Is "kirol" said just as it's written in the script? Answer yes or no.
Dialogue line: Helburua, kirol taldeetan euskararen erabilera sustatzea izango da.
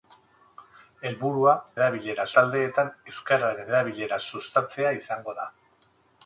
no